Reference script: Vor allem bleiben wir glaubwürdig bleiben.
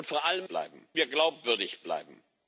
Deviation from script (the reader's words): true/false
false